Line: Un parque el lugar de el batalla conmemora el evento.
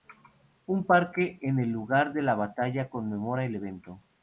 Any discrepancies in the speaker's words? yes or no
yes